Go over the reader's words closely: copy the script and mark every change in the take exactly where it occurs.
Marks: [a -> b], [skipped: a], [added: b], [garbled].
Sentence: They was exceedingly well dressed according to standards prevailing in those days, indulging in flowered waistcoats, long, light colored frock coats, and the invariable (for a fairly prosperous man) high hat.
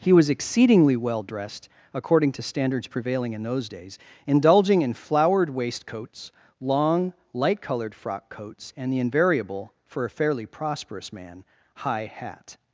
[They -> He] was exceedingly well dressed according to standards prevailing in those days, indulging in flowered waistcoats, long, light colored frock coats, and the invariable (for a fairly prosperous man) high hat.